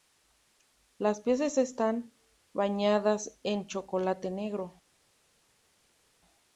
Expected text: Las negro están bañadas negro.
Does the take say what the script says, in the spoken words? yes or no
no